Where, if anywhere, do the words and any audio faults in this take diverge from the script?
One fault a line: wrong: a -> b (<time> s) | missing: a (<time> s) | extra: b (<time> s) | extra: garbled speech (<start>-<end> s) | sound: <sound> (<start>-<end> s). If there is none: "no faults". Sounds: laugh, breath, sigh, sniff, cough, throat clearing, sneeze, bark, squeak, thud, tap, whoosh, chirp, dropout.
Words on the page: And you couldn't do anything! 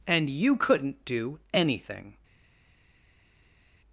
no faults